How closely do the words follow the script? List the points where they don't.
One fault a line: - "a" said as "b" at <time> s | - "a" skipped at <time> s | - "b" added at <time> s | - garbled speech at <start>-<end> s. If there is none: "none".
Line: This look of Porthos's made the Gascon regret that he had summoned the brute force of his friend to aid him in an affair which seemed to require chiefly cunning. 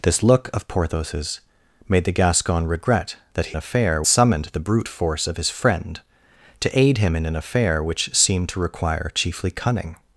- "had" said as "affair" at 3.6 s